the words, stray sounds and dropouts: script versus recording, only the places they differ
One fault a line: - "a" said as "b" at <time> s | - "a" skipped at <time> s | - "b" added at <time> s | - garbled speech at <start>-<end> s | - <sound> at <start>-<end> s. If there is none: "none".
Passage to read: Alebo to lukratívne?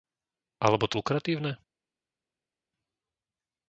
none